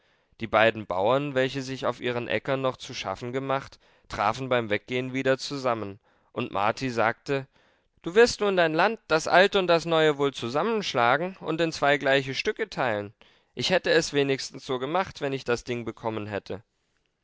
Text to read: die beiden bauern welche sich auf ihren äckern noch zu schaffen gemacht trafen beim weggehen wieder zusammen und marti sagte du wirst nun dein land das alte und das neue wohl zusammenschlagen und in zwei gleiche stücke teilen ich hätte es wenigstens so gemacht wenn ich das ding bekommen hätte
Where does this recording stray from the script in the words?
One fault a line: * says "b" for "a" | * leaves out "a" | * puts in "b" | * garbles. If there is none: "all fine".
all fine